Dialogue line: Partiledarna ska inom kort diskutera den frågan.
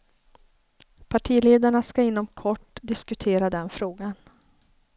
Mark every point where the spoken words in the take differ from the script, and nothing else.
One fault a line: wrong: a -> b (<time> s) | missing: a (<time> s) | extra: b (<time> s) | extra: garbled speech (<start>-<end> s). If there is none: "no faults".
no faults